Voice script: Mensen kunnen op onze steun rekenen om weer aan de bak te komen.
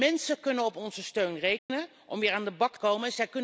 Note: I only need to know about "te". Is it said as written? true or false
false